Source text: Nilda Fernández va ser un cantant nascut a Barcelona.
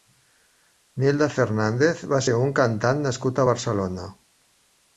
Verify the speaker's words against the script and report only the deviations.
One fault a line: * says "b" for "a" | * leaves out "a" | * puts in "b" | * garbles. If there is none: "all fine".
all fine